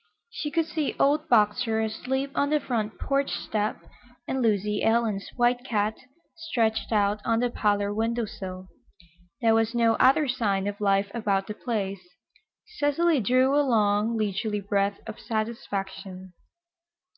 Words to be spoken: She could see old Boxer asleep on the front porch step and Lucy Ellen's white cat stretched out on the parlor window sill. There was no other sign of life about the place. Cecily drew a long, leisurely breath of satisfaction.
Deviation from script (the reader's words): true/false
false